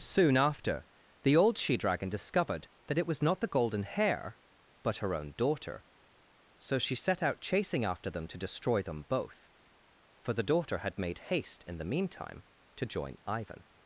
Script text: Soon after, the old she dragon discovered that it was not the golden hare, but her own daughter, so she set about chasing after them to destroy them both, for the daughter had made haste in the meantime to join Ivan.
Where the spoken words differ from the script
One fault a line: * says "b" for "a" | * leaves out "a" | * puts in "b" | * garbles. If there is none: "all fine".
* says "out" for "about"